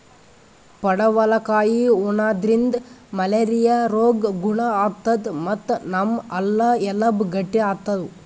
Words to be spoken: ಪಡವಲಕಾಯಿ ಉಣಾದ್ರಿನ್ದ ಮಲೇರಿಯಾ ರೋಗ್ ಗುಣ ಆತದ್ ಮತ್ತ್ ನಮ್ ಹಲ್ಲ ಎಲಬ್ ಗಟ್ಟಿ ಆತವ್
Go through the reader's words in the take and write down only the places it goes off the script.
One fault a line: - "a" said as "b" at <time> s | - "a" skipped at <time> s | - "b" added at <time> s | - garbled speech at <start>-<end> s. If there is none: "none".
none